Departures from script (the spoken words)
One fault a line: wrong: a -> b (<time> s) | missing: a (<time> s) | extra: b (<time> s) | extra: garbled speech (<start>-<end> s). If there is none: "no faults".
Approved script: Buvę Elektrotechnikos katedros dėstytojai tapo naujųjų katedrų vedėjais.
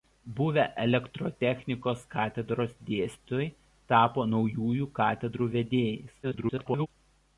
extra: garbled speech (6.2-6.9 s)